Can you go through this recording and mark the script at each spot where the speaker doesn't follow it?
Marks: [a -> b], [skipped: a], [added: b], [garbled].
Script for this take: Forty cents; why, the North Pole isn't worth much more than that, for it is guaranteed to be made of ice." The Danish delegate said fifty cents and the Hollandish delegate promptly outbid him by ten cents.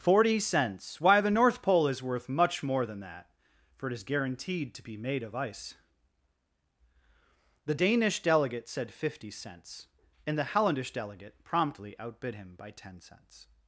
Forty cents; why, the North Pole [isn't -> is] worth much more than that, for it is guaranteed to be made of ice." The Danish delegate said fifty cents and the Hollandish delegate promptly outbid him by ten cents.